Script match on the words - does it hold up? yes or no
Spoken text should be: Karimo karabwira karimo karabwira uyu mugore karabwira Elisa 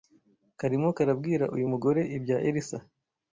no